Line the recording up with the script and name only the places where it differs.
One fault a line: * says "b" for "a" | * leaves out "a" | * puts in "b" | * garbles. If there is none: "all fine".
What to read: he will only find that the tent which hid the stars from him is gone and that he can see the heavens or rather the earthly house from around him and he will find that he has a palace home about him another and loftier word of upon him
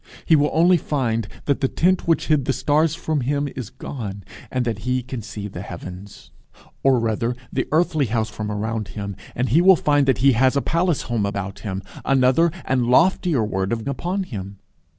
all fine